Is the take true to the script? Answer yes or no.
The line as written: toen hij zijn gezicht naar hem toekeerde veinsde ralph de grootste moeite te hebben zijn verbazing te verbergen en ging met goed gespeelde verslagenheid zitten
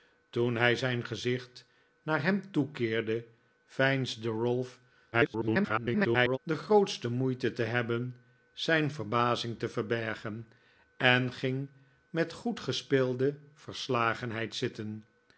no